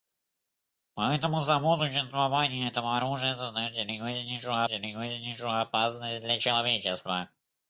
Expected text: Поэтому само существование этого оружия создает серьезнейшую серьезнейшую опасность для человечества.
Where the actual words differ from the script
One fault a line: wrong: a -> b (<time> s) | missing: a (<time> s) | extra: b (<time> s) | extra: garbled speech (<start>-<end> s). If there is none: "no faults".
no faults